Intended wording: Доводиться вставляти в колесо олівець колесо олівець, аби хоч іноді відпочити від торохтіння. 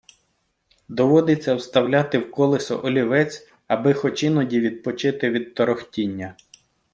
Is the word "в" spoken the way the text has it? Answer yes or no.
yes